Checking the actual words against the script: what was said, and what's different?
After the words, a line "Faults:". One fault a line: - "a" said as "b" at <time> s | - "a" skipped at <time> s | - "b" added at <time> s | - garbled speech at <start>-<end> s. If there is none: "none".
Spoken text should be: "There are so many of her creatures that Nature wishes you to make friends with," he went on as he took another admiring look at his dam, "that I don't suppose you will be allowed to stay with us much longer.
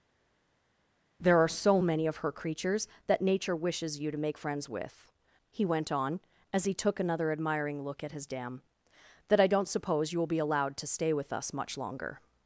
"There are so many of her creatures that Nature wishes you to make friends with," he went on as he took another admiring look at his dam, "that I don't suppose you will be allowed to stay with us much longer.
Faults:
none